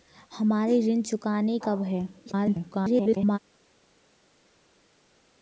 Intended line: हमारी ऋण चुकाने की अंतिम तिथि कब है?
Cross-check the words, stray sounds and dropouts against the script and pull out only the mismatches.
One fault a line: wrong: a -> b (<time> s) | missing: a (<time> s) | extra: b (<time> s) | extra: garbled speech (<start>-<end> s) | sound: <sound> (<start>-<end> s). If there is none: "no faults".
missing: की अंतिम तिथि (1.6 s)
extra: garbled speech (2.3-3.4 s)